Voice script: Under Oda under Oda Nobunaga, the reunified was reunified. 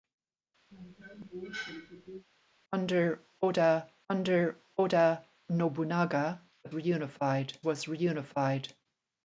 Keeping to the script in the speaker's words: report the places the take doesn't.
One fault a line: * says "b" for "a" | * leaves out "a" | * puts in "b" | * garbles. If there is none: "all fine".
all fine